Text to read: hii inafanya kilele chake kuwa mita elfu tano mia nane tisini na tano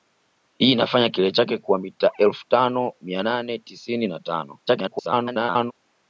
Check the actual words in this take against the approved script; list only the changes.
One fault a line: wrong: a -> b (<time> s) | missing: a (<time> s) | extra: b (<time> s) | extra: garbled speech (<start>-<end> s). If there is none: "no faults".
extra: garbled speech (4.7-5.7 s)